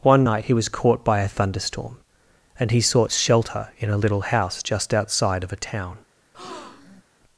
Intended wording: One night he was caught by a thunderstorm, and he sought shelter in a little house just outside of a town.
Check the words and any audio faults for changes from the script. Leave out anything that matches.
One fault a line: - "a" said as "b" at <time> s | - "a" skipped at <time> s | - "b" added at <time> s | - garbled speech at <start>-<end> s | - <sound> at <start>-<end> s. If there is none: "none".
- breath at 6.3-7.0 s